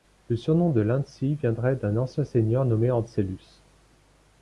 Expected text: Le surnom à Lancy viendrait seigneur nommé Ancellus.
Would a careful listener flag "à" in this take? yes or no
yes